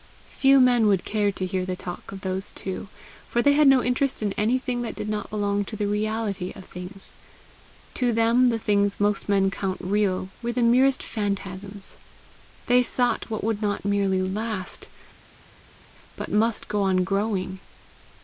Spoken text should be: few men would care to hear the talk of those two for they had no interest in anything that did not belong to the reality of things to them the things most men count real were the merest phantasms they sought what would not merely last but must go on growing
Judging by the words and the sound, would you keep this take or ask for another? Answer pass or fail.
pass